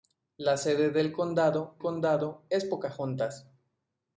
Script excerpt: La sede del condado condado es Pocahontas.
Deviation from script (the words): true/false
false